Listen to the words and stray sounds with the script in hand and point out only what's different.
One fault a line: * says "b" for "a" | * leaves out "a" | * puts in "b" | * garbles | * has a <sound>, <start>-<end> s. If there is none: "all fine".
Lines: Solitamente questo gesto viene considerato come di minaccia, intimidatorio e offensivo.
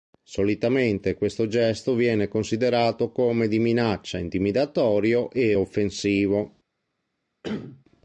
* has a cough, 7.4-7.8 s